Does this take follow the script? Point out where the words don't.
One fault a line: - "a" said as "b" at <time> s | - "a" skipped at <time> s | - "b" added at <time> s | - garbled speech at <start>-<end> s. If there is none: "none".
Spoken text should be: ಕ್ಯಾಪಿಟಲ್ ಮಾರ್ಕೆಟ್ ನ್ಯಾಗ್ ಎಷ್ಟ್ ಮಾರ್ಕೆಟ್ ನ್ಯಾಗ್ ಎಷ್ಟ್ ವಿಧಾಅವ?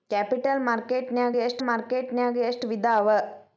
none